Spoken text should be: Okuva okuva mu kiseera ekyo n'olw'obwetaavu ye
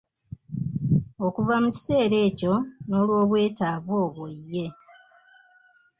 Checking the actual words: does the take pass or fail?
fail